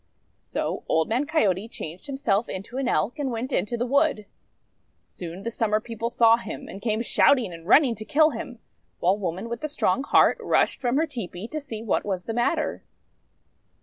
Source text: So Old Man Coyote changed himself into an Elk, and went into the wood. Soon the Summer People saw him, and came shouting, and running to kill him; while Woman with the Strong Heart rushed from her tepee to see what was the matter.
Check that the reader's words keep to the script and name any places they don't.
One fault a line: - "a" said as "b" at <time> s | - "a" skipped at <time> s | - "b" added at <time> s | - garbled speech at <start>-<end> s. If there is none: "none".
none